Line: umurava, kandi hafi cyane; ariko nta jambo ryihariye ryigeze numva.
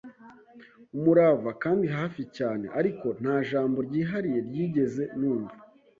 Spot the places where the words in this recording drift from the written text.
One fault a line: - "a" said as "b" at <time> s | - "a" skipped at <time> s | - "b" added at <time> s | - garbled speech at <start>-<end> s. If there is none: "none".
none